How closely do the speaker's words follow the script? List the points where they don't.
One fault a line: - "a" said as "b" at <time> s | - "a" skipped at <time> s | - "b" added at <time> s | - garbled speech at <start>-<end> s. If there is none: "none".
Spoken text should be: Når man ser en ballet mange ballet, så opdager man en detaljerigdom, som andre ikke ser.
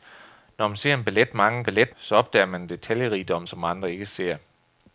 none